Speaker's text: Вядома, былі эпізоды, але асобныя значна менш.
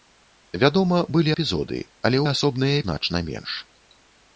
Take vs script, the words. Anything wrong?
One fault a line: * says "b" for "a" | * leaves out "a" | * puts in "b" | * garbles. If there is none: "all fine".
all fine